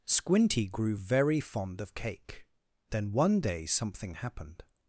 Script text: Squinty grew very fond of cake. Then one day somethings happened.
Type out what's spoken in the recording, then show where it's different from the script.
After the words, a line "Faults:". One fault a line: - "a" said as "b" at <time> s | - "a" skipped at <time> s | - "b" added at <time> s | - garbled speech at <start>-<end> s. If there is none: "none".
Squinty grew very fond of cake. Then one day something happened.
Faults:
- "somethings" said as "something" at 3.7 s